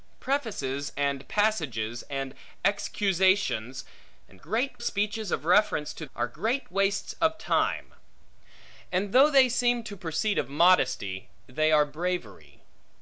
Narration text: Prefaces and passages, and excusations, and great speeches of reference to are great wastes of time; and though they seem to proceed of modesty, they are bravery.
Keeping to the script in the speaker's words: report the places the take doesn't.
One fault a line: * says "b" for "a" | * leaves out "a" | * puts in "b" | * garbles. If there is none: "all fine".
all fine